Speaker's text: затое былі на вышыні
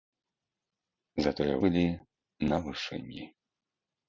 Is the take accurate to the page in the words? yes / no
yes